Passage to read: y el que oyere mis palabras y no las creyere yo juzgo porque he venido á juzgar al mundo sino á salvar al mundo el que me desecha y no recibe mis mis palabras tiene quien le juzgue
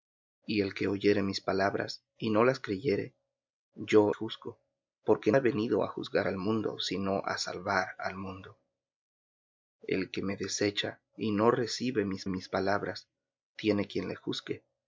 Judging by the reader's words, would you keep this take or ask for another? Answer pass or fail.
pass